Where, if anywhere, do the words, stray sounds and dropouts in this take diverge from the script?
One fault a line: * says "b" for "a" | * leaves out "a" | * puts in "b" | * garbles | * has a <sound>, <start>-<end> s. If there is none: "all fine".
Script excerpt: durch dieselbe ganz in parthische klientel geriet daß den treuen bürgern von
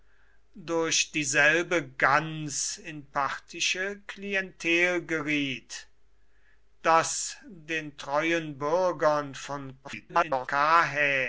* garbles